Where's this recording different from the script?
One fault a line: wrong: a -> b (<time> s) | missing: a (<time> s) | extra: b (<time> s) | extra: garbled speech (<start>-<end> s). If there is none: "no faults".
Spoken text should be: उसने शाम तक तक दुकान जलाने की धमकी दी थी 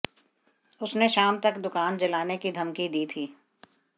missing: तक (1.6 s)